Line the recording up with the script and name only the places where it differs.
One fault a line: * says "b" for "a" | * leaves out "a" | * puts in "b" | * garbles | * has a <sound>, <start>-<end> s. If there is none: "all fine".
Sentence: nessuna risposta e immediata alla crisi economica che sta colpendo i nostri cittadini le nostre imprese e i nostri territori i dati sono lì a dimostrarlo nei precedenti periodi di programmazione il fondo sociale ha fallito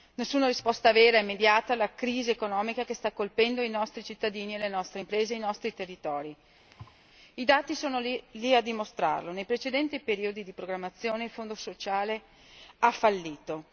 * puts in "vera"
* has a thud, 6.7-7.0 s